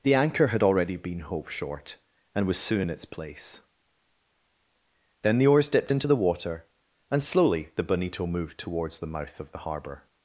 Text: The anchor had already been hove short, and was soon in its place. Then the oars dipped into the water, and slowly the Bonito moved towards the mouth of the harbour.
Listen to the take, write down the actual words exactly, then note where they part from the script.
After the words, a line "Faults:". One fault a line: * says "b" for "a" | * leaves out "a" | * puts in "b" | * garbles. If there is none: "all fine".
The anchor had already been hove short, and was soon in its place. Then the oars dipped into the water, and slowly the Bonito moved towards the mouth of the harbour.
Faults:
all fine